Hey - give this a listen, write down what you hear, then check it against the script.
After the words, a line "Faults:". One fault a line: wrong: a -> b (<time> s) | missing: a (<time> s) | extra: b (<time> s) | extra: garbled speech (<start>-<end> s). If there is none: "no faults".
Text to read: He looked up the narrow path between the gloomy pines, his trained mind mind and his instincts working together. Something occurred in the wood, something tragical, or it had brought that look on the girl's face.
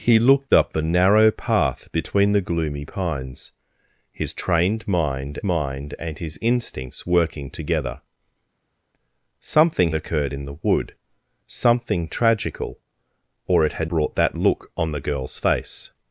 He looked up the narrow path between the gloomy pines, his trained mind mind and his instincts working together. Something occurred in the wood, something tragical, or it had brought that look on the girl's face.
Faults:
no faults